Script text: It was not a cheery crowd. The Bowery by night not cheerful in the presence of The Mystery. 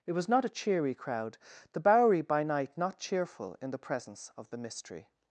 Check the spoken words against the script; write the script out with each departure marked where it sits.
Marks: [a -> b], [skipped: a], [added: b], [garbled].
It was not a cheery crowd. The Bowery by night not cheerful in the presence of The Mystery.